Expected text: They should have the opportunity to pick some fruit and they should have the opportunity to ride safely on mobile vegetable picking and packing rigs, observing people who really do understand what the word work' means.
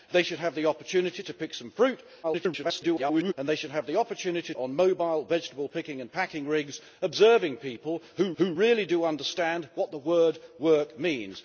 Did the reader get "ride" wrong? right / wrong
wrong